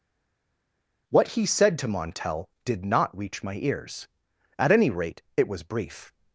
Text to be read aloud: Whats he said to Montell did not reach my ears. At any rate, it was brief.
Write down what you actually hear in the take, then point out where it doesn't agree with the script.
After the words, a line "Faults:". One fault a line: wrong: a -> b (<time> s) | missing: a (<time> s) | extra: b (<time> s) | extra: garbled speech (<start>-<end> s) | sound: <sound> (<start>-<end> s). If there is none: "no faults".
What he said to Montell did not reach my ears. At any rate, it was brief.
Faults:
wrong: Whats -> What (1.1 s)